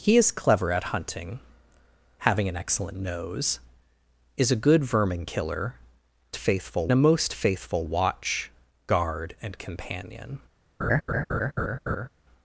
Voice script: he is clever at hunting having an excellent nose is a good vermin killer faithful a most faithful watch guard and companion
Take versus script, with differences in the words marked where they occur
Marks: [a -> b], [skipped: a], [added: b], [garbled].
he is clever at hunting having an excellent nose is a good vermin killer faithful a most faithful watch guard and companion